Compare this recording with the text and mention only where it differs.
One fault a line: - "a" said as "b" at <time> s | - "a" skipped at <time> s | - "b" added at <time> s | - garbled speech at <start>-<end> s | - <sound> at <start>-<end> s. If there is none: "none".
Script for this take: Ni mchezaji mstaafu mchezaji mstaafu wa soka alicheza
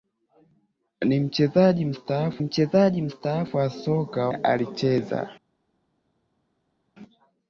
none